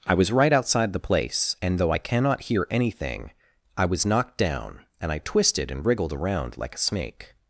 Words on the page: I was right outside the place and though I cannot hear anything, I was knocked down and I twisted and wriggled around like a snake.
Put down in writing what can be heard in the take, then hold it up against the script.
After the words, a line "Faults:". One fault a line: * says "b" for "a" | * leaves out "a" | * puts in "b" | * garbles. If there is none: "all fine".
I was right outside the place and though I cannot hear anything, I was knocked down and I twisted and wriggled around like a snake.
Faults:
all fine